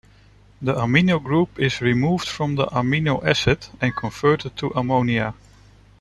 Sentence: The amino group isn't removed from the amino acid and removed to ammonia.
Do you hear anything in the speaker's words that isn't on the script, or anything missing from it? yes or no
yes